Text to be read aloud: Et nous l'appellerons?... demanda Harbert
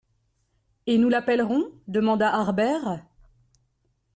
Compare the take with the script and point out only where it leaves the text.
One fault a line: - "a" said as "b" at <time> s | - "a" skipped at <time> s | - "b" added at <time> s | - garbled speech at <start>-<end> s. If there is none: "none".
none